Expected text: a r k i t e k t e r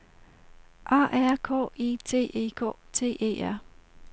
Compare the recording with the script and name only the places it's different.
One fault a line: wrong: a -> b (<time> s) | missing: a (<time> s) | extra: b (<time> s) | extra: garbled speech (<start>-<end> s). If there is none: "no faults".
no faults